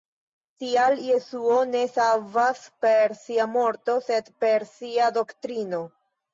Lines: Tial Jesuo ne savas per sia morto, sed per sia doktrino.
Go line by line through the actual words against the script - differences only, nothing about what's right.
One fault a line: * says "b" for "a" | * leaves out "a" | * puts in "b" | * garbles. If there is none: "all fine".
all fine